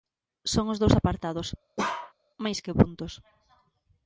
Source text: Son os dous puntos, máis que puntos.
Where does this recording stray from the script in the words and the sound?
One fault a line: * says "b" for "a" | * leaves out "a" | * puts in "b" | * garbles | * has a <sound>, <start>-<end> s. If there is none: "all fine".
* says "apartados" for "puntos"
* has a bark, 1.8-2.1 s